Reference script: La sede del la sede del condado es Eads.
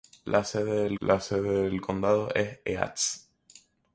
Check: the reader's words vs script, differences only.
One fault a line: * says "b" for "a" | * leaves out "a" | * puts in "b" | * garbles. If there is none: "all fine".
all fine